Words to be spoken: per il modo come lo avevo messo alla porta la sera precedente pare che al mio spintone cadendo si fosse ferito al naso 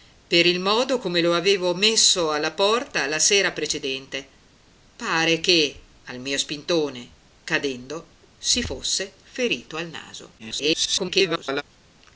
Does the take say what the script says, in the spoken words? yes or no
no